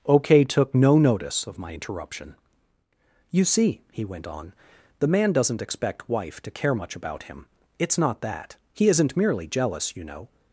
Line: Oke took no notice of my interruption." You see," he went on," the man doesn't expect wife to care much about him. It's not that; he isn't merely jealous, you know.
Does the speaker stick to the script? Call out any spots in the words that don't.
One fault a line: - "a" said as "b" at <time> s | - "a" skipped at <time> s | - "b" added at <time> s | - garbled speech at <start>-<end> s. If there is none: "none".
none